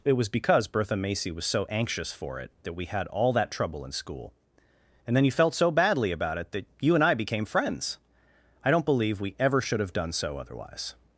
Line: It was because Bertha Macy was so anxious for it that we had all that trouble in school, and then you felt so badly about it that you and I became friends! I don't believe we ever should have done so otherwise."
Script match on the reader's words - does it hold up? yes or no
yes